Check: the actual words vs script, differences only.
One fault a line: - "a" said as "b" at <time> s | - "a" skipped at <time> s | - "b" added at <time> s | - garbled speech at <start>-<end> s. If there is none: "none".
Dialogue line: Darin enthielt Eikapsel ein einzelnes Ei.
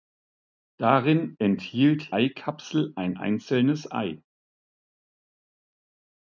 none